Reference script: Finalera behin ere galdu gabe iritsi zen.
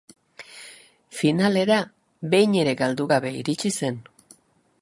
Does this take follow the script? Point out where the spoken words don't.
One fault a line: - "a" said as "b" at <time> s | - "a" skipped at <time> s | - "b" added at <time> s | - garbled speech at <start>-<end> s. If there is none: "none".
none